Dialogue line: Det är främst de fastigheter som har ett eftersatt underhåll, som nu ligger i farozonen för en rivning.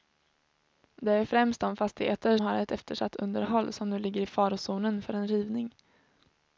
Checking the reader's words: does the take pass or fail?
fail